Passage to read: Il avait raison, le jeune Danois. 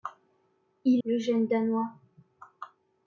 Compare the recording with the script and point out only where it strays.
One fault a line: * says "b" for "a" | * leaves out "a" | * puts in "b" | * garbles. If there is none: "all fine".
* leaves out "avait raison"